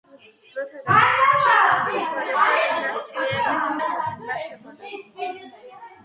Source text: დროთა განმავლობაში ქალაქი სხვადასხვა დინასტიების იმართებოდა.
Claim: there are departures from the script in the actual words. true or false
false